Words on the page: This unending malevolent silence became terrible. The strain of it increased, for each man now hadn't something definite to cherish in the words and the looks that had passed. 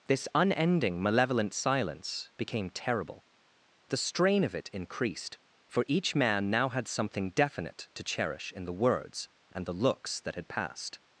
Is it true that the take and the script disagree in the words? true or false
true